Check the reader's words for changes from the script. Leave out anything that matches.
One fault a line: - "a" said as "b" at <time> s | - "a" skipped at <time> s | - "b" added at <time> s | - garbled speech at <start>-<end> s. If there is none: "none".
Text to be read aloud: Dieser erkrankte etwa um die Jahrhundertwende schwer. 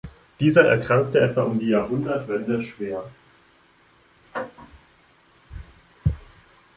none